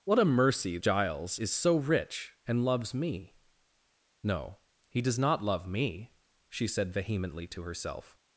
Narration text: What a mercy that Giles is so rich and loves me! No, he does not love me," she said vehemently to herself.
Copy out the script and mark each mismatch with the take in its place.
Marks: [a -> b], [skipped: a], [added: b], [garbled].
What a mercy [skipped: that] Giles is so rich and loves me! No, he does not love me," she said vehemently to herself.